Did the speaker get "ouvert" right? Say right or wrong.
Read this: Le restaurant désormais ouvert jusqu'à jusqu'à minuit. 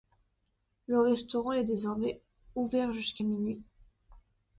right